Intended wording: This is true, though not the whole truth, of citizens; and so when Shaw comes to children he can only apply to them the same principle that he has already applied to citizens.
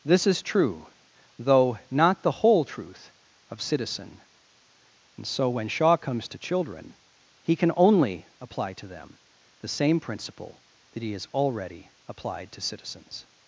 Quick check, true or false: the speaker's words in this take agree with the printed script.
false